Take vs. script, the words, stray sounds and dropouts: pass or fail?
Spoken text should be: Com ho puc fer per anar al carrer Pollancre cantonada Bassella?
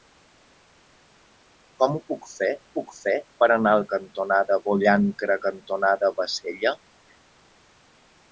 fail